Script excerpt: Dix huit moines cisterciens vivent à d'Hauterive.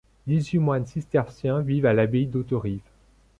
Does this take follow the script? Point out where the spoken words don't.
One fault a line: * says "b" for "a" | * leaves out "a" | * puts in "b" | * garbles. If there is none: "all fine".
* puts in "l'abbaye"